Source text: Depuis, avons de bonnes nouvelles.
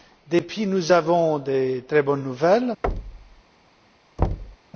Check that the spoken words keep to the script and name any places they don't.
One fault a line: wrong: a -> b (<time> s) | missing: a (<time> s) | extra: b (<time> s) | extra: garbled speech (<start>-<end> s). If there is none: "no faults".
extra: nous (0.7 s)
extra: très (1.9 s)